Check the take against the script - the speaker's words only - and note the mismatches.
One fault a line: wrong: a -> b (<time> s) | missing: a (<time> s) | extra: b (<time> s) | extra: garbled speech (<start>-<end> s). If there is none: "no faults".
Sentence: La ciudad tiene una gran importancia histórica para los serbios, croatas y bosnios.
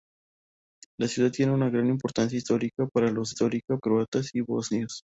wrong: serbios -> histórica (3.3 s)